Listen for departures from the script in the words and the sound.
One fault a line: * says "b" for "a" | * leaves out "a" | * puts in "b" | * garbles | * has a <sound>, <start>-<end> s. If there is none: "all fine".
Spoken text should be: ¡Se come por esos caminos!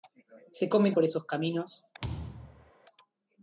* has a thud, 2.0-2.7 s